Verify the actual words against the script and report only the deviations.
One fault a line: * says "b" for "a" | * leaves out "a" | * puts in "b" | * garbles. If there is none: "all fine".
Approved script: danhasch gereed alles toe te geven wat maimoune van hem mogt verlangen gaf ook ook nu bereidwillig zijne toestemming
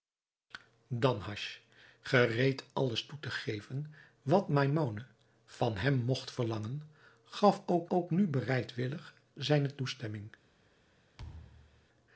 all fine